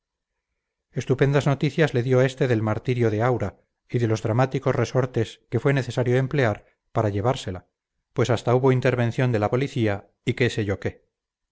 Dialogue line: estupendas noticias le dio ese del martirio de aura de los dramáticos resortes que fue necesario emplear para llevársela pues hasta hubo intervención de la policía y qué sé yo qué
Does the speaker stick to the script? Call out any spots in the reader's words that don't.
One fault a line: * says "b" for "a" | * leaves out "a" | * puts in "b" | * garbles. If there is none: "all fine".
* says "este" for "ese"
* puts in "y"